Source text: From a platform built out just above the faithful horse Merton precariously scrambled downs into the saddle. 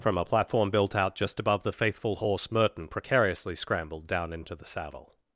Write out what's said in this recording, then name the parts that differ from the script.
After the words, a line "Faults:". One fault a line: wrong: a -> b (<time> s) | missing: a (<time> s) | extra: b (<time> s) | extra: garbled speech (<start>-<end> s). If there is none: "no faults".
From a platform built out just above the faithful horse Merton precariously scrambled down into the saddle.
Faults:
wrong: downs -> down (4.1 s)